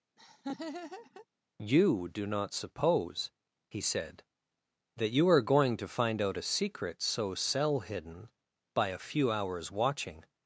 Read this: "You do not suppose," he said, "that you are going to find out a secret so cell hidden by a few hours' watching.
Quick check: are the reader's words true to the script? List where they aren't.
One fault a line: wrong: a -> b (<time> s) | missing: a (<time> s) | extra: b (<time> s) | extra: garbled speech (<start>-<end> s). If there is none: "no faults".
no faults